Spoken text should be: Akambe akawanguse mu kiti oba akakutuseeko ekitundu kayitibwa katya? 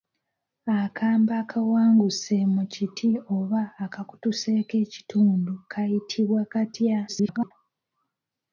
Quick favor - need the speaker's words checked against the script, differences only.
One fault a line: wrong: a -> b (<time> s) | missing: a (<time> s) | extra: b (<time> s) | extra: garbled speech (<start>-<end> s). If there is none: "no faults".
extra: garbled speech (7.1-7.5 s)